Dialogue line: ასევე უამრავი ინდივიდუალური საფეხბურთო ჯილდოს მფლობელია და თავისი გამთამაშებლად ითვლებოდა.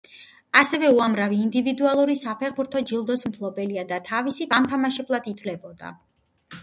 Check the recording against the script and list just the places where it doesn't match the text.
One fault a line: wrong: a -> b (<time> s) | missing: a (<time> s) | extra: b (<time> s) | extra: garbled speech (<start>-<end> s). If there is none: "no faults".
no faults